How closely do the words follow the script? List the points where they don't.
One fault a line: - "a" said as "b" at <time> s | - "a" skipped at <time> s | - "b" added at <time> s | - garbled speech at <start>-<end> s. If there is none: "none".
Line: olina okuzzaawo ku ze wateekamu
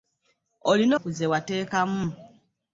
- "okuzzaawo" skipped at 0.9 s